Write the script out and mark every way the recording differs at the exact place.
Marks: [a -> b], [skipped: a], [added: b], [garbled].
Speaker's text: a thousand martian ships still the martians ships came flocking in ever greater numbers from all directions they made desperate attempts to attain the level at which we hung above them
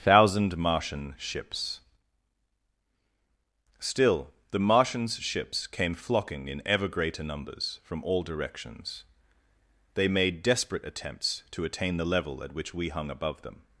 [skipped: a] thousand martian ships still the martians ships came flocking in ever greater numbers from all directions they made desperate attempts to attain the level at which we hung above them